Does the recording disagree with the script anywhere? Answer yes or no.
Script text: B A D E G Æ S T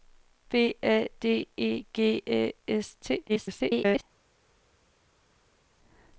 yes